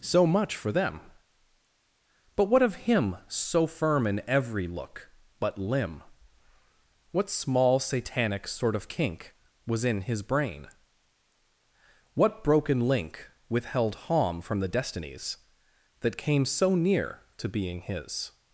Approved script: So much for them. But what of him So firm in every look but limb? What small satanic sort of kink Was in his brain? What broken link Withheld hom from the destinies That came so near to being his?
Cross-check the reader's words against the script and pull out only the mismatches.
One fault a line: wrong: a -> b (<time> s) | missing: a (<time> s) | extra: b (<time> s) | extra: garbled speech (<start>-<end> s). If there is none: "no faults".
no faults